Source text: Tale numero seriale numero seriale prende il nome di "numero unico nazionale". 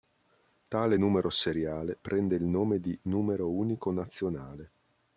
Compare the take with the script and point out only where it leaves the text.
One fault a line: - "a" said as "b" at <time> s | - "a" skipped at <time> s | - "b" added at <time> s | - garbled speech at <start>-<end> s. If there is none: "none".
- "numero seriale" skipped at 2.0 s